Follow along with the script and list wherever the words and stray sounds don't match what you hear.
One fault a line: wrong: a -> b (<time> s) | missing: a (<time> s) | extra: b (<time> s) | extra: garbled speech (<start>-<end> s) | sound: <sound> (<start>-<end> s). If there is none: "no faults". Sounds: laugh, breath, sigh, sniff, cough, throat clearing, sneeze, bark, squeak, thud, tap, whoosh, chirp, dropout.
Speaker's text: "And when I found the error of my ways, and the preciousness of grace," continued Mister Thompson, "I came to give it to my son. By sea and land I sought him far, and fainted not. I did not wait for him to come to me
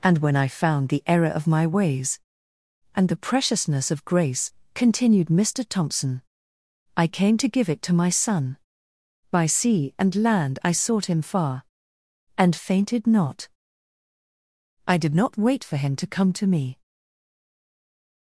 no faults